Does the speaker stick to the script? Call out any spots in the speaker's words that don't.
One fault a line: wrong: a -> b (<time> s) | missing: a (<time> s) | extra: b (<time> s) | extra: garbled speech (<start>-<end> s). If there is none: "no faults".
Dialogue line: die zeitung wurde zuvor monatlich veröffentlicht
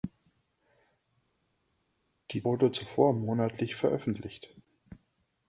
missing: zeitung (2.4 s)